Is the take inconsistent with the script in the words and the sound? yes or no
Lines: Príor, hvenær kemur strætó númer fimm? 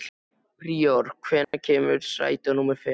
yes